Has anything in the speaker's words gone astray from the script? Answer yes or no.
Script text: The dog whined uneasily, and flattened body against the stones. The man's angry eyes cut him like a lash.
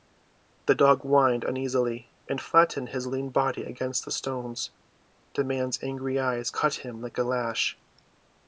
yes